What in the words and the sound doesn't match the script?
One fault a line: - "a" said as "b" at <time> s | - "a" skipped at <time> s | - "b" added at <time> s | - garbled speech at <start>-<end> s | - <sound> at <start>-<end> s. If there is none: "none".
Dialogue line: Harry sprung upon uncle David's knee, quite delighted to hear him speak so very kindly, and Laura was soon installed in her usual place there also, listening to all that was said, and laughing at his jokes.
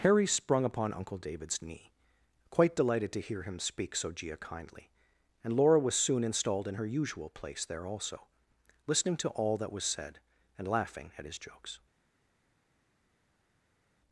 - "very" said as "gia" at 4.1 s